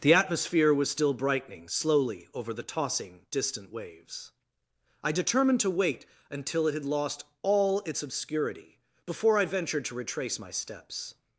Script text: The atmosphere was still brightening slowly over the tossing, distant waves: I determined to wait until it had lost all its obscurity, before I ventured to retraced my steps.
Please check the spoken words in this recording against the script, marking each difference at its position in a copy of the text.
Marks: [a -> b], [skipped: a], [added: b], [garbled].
The atmosphere was still brightening slowly over the tossing, distant waves: I determined to wait until it had lost all its obscurity, before I ventured to [retraced -> retrace] my steps.